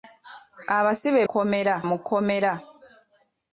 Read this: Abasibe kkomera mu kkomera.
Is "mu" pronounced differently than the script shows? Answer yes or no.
no